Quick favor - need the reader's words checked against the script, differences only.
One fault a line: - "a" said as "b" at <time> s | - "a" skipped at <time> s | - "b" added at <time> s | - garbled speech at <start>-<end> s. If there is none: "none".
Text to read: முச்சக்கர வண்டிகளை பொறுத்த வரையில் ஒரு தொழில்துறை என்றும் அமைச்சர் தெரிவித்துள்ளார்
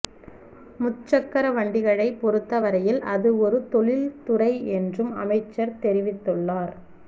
- "அது" added at 3.1 s